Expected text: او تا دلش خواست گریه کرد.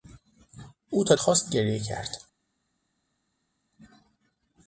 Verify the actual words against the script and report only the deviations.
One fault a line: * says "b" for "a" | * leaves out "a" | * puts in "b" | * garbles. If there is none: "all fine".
* leaves out "دلش"